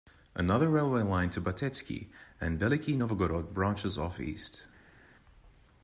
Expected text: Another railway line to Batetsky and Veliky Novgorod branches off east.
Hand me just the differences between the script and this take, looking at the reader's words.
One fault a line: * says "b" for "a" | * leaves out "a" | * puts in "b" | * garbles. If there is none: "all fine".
all fine